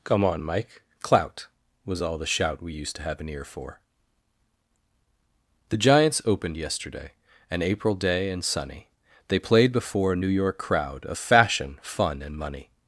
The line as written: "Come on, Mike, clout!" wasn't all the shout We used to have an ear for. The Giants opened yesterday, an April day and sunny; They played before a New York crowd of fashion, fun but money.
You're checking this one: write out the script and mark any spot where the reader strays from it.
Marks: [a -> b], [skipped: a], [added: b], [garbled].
"Come on, Mike, clout!" [wasn't -> was] all the shout We used to have an ear for. The Giants opened yesterday, an April day and sunny; They played before a New York crowd of fashion, fun [but -> and] money.